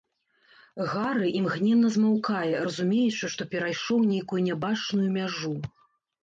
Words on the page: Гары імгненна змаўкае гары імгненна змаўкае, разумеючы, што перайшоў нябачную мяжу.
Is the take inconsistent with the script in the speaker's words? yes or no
yes